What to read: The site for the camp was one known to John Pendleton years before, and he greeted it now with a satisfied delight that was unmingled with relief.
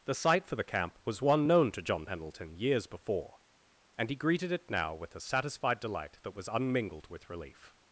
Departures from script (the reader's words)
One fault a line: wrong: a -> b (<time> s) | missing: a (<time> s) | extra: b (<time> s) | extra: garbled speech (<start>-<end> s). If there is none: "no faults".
no faults